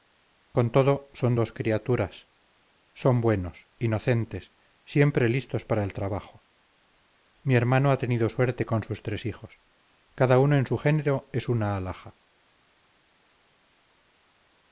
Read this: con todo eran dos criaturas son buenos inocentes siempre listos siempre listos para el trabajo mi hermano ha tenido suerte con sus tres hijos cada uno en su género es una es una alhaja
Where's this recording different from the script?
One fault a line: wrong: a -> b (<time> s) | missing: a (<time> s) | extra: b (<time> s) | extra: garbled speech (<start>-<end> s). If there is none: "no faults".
wrong: eran -> son (1.1 s)
missing: siempre listos (5.6 s)
missing: es una (11.8 s)